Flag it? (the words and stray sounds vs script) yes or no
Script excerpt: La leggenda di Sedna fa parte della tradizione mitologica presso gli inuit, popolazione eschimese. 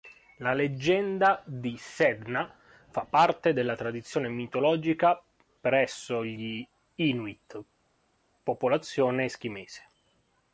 no